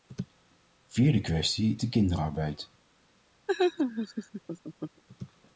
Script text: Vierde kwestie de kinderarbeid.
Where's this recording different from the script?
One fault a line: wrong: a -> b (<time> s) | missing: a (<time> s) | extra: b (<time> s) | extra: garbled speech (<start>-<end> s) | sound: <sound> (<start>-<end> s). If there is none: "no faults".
sound: laugh (3.5-5.0 s)